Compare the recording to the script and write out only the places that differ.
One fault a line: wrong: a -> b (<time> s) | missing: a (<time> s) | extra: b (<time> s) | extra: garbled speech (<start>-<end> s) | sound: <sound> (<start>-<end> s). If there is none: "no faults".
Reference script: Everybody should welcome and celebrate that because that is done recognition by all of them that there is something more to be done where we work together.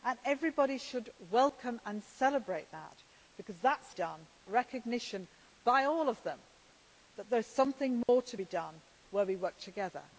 sound: dropout (8.0-8.1 s)